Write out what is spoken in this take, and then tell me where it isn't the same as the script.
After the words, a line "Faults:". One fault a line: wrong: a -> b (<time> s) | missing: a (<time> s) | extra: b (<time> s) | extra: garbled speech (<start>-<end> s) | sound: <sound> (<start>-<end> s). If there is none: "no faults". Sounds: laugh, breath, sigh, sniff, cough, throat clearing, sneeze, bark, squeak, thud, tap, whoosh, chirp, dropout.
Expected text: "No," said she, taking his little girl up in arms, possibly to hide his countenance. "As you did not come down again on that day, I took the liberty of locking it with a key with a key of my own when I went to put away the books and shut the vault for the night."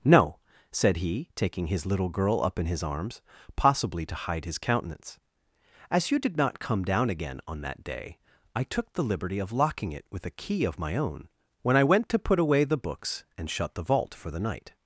"No," said he, taking his little girl up in his arms, possibly to hide his countenance. "As you did not come down again on that day, I took the liberty of locking it with a key of my own when I went to put away the books and shut the vault for the night."
Faults:
wrong: she -> he (1.0 s)
extra: his (2.6 s)
missing: with a key (10.7 s)